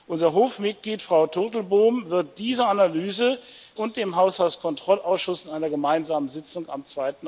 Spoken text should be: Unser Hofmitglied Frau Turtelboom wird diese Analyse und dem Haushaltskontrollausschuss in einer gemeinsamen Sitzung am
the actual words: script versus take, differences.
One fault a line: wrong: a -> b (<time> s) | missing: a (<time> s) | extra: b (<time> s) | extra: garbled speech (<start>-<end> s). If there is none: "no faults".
no faults